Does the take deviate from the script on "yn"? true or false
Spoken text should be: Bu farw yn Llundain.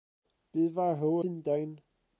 true